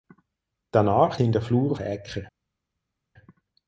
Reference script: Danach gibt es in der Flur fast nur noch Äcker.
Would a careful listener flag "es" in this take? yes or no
yes